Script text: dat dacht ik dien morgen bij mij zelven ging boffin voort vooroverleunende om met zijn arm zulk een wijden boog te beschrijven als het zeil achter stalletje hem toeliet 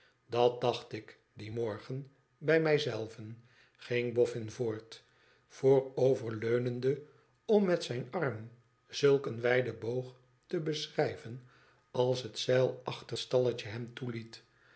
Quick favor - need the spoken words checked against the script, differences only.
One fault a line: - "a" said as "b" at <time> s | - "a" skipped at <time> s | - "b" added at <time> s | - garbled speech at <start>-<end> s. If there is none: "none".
none